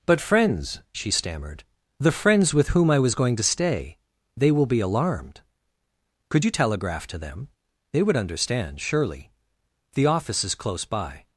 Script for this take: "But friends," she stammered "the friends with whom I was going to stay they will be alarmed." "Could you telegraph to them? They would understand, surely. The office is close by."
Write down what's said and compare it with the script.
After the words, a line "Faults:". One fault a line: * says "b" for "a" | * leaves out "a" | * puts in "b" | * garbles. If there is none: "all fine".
"But friends," she stammered "the friends with whom I was going to stay they will be alarmed." "Could you telegraph to them? They would understand, surely. The office is close by."
Faults:
all fine